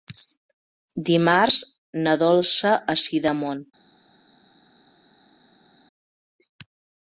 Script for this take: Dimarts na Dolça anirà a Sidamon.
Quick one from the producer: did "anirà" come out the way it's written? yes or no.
no